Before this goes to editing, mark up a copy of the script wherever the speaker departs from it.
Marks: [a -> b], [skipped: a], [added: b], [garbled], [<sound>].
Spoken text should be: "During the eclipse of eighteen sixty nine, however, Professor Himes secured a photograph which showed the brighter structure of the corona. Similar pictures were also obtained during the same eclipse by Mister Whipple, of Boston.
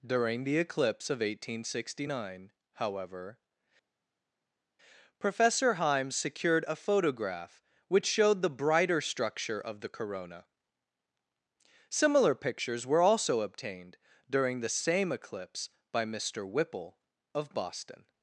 "During the eclipse of eighteen sixty nine, however, Professor Himes secured a photograph which showed the brighter structure of the corona. Similar pictures were also obtained during the same eclipse by Mister Whipple, of Boston.